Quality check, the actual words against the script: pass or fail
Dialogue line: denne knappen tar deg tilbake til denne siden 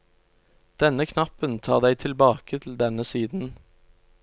pass